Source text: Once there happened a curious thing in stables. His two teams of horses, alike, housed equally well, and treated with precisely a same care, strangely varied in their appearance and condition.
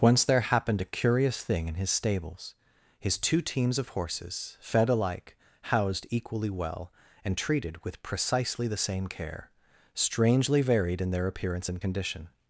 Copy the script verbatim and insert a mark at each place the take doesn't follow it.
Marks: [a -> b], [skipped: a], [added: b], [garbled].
Once there happened a curious thing in [added: his] stables. His two teams of horses, [added: fed] alike, housed equally well, and treated with precisely [a -> the] same care, strangely varied in their appearance and condition.